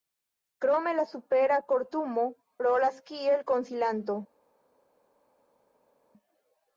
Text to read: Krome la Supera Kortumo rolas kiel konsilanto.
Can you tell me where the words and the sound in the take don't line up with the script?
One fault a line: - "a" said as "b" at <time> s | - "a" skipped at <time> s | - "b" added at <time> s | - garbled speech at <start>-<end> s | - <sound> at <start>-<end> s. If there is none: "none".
none